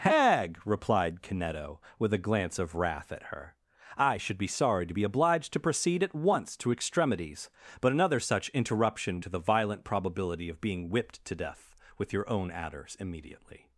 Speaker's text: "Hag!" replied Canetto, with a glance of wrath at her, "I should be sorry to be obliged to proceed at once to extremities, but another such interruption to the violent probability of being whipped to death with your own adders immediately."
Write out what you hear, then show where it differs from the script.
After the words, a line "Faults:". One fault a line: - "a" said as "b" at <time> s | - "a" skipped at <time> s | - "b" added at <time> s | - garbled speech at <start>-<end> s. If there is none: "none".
"Hag!" replied Canetto, with a glance of wrath at her, "I should be sorry to be obliged to proceed at once to extremities, but another such interruption to the violent probability of being whipped to death with your own adders immediately."
Faults:
none